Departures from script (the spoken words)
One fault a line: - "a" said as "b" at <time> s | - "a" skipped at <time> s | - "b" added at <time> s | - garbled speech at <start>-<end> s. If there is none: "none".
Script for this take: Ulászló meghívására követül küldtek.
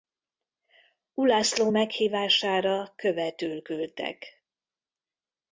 none